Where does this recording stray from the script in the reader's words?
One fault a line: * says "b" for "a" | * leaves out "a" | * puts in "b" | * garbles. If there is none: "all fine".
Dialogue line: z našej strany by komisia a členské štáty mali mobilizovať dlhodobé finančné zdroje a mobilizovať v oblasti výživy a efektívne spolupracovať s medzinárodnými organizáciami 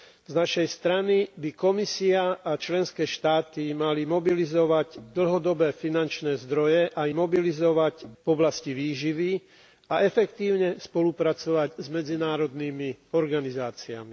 all fine